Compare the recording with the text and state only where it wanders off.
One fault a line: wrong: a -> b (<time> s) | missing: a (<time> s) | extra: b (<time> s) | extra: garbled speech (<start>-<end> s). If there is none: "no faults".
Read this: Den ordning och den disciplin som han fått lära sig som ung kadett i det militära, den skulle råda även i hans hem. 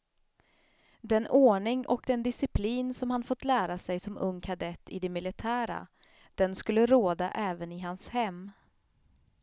no faults